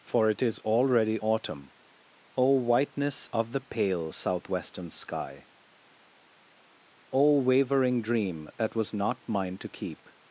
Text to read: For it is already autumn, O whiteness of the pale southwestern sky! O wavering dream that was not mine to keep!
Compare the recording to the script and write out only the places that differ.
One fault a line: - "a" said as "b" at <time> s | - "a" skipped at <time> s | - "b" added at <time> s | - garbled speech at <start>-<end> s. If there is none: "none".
none